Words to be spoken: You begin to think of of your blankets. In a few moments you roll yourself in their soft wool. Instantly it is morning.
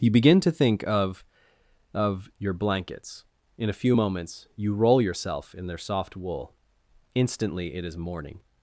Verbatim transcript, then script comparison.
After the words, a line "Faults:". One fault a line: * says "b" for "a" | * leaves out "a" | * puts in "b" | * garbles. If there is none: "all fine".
You begin to think of of your blankets. In a few moments you roll yourself in their soft wool. Instantly it is morning.
Faults:
all fine